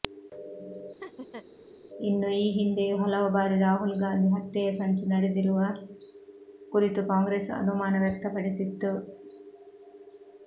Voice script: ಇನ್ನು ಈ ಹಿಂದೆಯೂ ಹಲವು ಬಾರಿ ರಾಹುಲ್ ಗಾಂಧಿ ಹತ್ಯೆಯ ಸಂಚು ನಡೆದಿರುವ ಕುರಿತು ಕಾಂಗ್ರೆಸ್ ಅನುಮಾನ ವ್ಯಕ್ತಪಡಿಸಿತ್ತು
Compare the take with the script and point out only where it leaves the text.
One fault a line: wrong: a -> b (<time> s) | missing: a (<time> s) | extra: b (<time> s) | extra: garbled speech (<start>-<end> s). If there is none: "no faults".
no faults